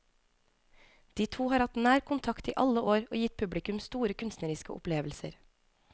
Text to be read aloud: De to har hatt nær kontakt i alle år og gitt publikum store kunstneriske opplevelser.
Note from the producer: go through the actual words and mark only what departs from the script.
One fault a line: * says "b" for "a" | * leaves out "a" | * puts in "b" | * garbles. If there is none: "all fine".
all fine